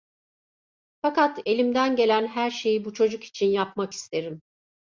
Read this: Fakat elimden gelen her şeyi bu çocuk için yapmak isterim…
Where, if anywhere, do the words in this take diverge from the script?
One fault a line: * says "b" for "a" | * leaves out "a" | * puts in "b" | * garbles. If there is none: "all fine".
all fine